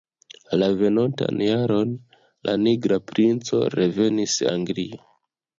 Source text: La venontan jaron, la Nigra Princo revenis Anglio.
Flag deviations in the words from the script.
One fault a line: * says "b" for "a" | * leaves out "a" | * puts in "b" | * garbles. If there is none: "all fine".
all fine